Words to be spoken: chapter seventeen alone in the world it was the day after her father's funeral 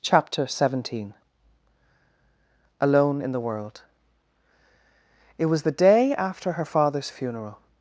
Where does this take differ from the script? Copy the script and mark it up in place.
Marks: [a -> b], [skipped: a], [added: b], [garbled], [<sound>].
chapter seventeen alone in the world it was the day after her father's funeral